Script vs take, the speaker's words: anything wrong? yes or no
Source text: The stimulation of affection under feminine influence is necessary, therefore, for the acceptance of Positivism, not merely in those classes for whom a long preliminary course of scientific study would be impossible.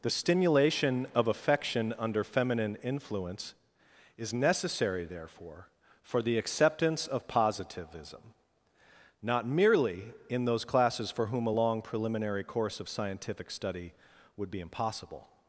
no